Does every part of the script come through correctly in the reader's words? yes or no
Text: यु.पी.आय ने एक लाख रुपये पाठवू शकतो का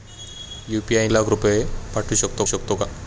no